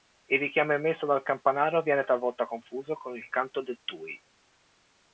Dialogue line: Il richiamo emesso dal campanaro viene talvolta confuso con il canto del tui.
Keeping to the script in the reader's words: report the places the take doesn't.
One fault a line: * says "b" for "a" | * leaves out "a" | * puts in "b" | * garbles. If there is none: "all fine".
all fine